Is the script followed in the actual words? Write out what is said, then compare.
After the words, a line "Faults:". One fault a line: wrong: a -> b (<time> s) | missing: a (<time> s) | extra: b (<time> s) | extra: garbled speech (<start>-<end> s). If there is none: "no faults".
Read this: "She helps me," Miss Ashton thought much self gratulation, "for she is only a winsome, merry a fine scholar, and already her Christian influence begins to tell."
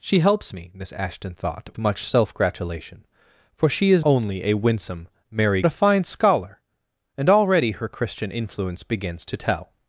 "She helps me," Miss Ashton thought much self gratulation, "for she is only a winsome, merry a fine scholar, and already her Christian influence begins to tell."
Faults:
no faults